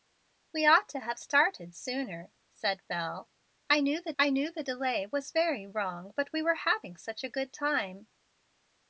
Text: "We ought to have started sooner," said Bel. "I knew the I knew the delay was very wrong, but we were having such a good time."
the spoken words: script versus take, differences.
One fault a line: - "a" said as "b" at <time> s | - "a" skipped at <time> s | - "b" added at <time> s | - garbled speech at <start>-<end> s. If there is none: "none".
none